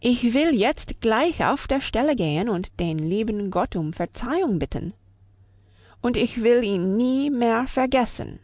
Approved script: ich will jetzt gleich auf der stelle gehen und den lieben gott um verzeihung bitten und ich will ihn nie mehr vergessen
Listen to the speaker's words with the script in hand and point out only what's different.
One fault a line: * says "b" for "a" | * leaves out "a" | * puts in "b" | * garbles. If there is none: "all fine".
all fine